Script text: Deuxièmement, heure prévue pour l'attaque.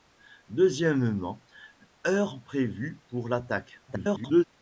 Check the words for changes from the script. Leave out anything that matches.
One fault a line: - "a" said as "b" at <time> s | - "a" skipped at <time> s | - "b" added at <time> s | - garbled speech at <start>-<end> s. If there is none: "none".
- garbled speech at 3.9-4.4 s